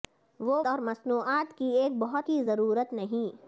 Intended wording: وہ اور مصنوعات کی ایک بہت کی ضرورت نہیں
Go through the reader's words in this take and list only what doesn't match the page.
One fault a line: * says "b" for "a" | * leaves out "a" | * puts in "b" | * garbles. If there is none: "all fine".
all fine